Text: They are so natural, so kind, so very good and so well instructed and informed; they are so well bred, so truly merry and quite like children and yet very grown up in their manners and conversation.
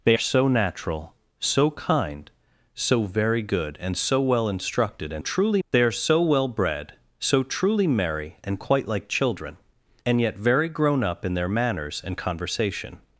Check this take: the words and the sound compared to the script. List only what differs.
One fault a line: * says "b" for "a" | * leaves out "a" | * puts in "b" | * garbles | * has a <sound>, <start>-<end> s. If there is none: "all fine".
* leaves out "are"
* says "truly" for "informed"